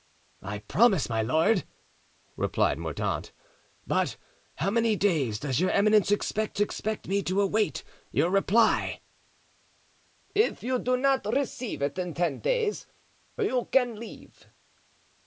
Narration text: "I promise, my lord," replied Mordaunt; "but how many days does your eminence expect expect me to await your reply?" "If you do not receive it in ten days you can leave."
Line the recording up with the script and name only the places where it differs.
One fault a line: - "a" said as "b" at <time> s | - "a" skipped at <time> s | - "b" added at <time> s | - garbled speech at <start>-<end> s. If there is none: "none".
none